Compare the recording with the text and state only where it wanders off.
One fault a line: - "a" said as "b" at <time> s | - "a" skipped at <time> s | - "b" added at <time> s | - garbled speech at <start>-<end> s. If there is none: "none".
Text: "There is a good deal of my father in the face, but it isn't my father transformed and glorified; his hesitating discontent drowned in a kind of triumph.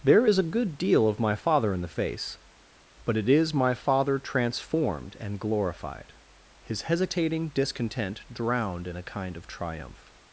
- "isn't" said as "is" at 3.3 s